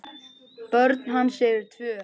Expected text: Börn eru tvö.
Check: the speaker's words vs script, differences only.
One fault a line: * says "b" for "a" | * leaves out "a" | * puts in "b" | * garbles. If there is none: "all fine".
* puts in "hans"